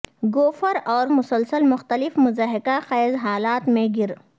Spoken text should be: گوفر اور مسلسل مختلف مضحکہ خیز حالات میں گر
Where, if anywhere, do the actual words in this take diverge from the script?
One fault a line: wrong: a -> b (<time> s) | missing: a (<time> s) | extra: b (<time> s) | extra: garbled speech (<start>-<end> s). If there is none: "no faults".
no faults